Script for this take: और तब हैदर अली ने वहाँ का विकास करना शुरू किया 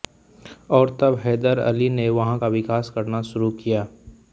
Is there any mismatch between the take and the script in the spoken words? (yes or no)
no